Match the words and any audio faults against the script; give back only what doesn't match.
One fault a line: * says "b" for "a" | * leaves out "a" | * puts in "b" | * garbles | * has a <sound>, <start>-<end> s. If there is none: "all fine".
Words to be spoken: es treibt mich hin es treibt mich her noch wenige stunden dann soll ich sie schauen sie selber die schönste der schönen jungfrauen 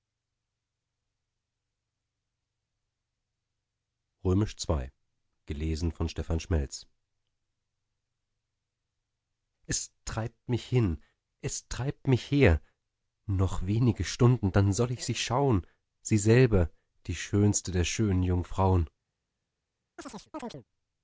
* has a chirp, 20.0-20.6 s